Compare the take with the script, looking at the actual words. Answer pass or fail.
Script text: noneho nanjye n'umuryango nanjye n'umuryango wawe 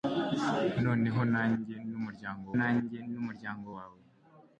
pass